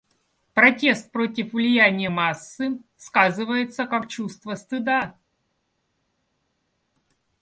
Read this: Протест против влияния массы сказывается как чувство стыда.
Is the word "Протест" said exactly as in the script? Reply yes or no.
yes